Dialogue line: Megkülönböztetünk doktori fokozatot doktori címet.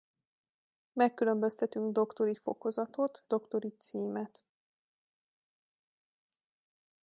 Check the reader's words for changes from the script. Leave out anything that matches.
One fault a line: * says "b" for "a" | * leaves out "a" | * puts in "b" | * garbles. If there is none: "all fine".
all fine